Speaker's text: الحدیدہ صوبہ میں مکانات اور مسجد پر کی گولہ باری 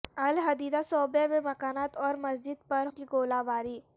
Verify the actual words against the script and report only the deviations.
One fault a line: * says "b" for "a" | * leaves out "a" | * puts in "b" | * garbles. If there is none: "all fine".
all fine